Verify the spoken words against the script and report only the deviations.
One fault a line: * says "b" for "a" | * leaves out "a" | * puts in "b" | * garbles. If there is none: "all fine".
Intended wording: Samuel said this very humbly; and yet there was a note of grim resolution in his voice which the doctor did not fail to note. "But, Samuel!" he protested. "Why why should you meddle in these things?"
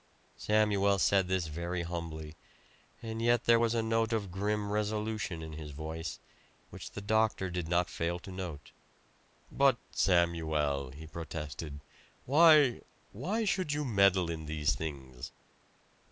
all fine